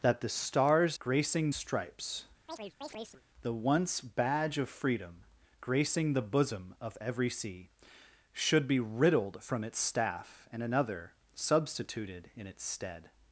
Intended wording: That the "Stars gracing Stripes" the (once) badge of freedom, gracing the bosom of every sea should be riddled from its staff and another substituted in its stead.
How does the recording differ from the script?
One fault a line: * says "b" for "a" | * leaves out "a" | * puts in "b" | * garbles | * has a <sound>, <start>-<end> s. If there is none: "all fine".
* has a chirp, 2.5-3.2 s